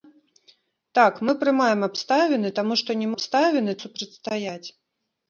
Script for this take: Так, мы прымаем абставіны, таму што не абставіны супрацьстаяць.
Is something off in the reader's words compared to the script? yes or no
no